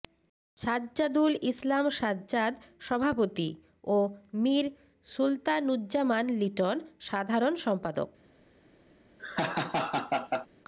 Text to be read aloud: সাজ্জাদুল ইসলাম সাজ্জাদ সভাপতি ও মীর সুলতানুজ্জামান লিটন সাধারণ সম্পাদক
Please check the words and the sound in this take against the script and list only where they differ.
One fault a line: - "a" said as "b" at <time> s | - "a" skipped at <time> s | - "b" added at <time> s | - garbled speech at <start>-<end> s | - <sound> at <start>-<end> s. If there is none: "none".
- laugh at 9.2-10.5 s